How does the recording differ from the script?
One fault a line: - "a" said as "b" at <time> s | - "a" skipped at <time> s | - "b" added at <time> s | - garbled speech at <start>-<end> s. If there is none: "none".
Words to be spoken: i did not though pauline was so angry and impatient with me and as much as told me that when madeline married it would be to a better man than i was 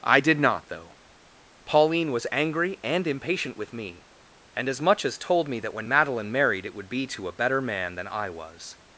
- "so" skipped at 2.3 s